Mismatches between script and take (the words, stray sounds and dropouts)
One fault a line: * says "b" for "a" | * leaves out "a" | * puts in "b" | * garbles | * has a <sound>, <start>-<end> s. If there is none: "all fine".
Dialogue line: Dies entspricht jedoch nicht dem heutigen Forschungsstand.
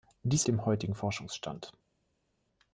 * leaves out "entspricht jedoch nicht"